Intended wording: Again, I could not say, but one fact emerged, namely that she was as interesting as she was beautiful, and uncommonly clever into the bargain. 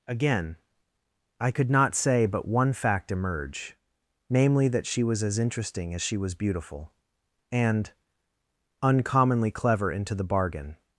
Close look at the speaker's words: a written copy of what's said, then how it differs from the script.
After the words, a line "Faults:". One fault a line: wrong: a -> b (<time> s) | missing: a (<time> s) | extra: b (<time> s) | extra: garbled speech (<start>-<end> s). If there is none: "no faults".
Again, I could not say, but one fact emerge, namely that she was as interesting as she was beautiful, and uncommonly clever into the bargain.
Faults:
wrong: emerged -> emerge (3.1 s)